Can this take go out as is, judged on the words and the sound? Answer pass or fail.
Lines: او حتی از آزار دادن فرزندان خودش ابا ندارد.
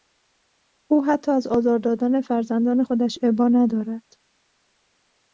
pass